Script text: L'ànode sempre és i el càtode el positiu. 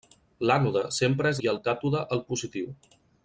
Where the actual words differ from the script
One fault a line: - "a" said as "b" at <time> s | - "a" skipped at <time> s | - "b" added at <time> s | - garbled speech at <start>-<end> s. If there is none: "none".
none